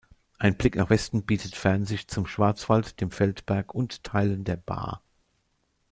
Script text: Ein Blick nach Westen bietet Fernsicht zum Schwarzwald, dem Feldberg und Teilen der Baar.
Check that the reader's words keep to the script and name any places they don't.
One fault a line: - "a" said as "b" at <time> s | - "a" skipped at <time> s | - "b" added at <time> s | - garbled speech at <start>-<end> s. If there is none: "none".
none